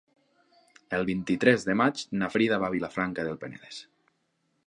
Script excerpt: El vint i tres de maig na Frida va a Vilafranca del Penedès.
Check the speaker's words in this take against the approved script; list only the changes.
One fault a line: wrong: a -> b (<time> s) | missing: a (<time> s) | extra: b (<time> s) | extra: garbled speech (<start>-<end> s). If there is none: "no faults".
no faults